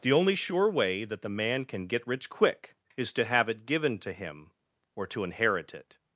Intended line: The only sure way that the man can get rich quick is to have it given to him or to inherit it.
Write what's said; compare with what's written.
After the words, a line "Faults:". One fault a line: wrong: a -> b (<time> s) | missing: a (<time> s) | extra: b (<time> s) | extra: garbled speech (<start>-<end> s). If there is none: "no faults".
The only sure way that the man can get rich quick is to have it given to him or to inherit it.
Faults:
no faults